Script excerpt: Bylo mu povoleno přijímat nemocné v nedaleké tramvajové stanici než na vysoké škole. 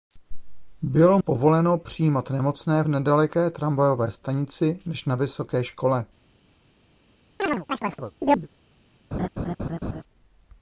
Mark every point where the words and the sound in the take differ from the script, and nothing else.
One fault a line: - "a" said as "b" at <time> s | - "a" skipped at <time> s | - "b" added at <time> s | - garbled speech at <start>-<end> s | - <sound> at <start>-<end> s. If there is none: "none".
- "mu" skipped at 1.2 s
- chirp at 7.4-8.5 s
- laugh at 9.1-10.0 s